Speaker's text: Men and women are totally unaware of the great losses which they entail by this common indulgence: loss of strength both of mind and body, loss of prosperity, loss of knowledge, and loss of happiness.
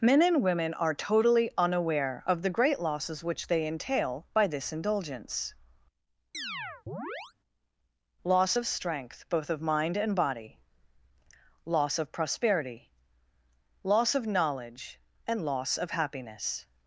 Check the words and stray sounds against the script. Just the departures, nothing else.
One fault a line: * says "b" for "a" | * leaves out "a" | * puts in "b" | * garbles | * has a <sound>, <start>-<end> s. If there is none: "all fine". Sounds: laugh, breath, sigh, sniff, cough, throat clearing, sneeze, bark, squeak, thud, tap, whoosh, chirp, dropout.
* leaves out "common"
* has a chirp, 6.3-7.3 s